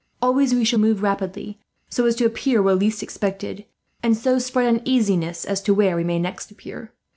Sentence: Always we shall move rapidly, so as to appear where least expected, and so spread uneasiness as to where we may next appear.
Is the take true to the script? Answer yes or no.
yes